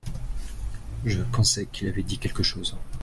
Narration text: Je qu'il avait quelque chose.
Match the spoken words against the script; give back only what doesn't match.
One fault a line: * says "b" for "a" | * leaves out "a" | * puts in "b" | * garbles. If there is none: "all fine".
* puts in "pensais"
* puts in "dit"